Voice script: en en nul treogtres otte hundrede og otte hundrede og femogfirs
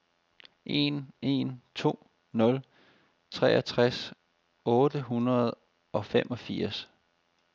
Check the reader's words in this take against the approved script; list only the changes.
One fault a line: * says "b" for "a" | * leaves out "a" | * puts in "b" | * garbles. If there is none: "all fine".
* puts in "to"
* leaves out "otte hundrede og"